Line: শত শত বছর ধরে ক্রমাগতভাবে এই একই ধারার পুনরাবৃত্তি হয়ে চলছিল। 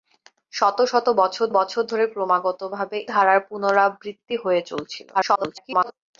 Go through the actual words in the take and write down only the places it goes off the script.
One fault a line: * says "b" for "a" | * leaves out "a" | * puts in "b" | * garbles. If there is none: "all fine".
* puts in "বছর"
* leaves out "এই একই"
* garbles